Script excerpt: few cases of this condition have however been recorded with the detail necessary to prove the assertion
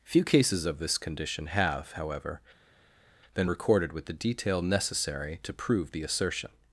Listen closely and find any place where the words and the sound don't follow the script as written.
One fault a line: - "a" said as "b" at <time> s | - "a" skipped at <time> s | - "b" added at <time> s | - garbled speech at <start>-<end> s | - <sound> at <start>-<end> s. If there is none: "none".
none